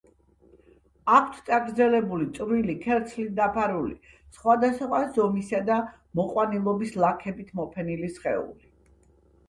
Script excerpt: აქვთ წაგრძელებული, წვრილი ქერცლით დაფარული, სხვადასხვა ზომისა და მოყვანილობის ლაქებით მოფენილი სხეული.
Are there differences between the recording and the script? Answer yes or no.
no